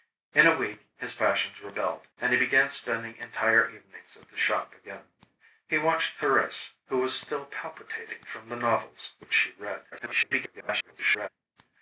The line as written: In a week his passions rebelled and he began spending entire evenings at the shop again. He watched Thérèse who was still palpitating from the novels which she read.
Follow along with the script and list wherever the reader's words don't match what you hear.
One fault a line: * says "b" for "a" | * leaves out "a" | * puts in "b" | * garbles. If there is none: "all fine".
* garbles